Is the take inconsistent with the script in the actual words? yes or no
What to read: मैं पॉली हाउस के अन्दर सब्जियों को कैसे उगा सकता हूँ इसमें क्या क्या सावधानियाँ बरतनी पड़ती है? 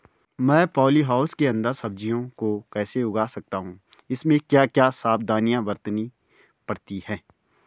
no